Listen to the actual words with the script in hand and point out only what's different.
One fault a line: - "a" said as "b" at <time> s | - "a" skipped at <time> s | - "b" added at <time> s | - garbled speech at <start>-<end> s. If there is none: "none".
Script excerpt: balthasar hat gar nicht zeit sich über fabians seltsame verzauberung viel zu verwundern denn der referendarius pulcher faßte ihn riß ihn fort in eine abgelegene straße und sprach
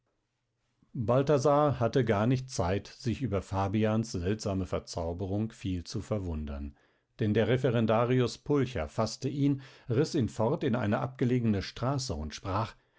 - "hat" said as "hatte" at 1.8 s